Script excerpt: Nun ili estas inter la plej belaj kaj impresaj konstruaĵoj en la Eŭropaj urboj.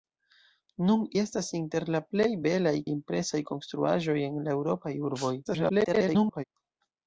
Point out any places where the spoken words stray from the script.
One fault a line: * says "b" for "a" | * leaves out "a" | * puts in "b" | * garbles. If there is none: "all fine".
* leaves out "ili"
* leaves out "kaj"
* garbles